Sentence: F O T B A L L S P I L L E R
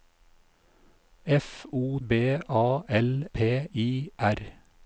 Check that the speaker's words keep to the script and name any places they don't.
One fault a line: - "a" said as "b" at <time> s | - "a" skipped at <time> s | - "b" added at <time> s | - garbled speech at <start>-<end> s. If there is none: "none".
- "T" skipped at 2.0 s
- "L S" skipped at 3.2 s
- "L L E" skipped at 4.1 s